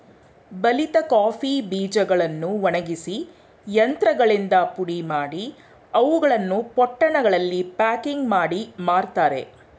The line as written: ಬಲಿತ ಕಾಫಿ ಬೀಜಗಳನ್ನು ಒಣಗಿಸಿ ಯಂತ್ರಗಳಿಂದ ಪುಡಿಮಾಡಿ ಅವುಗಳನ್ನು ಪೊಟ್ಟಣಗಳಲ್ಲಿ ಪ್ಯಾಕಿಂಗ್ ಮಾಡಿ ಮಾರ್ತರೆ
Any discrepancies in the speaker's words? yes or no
no